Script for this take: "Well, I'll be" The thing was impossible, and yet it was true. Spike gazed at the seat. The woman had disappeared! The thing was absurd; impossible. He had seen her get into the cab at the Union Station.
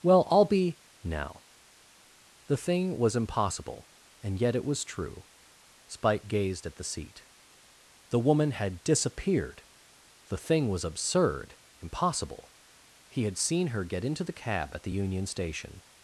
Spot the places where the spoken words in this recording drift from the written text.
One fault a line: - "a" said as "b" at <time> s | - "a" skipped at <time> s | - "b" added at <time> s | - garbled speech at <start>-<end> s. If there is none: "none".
- "now" added at 1.0 s